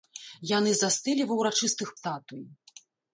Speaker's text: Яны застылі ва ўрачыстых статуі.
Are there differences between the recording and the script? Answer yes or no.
no